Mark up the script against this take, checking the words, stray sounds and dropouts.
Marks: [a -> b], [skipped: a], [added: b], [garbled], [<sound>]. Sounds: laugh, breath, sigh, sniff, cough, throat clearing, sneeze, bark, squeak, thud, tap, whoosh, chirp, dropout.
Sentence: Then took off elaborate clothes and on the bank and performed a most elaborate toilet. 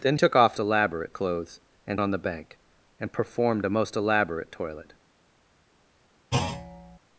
Then took off elaborate clothes and on the bank and performed a most elaborate toilet. [thud]